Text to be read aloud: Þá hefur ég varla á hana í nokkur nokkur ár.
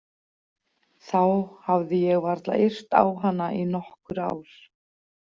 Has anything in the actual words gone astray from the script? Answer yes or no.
yes